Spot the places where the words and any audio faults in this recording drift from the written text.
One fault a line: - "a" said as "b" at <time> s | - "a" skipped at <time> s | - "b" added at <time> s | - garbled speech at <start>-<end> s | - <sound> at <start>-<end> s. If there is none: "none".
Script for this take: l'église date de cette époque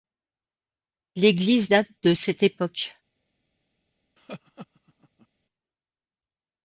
- laugh at 4.2-5.3 s